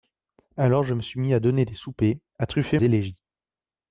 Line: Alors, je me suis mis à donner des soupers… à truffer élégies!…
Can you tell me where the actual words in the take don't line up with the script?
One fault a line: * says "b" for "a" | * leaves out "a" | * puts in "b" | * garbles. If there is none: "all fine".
all fine